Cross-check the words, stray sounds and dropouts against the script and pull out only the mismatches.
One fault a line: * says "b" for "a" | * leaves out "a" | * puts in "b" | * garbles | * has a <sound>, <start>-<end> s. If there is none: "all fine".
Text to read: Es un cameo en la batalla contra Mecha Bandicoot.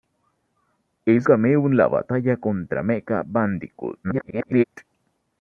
* leaves out "un"
* garbles